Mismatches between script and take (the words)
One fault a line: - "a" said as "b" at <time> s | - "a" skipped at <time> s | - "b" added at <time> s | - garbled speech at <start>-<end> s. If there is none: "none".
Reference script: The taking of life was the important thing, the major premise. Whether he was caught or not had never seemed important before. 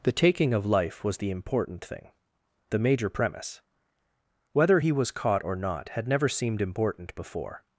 none